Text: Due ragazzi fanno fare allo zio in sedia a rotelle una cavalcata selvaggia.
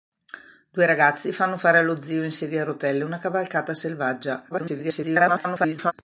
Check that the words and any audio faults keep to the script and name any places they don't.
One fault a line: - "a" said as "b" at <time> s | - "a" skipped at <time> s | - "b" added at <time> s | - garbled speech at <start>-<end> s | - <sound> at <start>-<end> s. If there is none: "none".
- garbled speech at 4.5-5.9 s